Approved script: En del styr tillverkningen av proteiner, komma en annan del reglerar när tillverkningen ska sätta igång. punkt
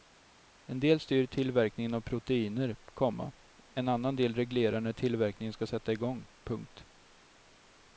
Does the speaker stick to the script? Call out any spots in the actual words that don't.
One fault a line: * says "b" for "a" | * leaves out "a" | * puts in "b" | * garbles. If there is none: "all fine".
all fine